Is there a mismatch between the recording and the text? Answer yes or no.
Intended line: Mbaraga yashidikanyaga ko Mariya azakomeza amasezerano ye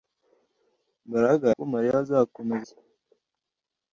yes